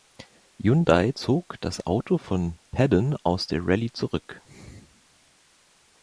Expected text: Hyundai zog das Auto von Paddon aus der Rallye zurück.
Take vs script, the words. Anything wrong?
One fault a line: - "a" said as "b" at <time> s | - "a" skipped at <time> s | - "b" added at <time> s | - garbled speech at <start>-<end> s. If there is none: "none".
none